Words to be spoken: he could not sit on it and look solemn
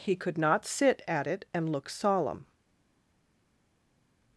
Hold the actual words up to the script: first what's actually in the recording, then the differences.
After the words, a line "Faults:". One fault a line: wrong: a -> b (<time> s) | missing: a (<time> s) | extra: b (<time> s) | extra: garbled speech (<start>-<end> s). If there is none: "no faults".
he could not sit at it and look solemn
Faults:
wrong: on -> at (1.1 s)